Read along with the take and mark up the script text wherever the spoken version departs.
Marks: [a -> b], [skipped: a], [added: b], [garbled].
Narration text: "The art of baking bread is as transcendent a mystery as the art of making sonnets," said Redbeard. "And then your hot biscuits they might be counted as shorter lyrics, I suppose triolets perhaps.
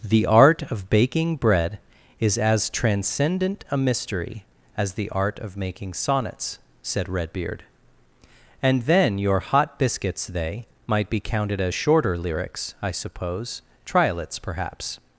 "The art of baking bread is as transcendent a mystery as the art of making sonnets," said Redbeard. "And then your hot biscuits they might be counted as shorter lyrics, I suppose triolets perhaps.